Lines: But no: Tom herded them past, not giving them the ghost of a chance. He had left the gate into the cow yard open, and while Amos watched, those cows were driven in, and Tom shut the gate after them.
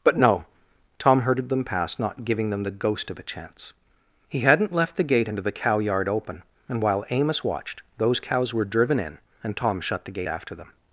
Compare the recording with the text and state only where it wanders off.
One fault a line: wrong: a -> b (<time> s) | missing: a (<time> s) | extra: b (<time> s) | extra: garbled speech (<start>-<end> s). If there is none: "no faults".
wrong: had -> hadn't (4.4 s)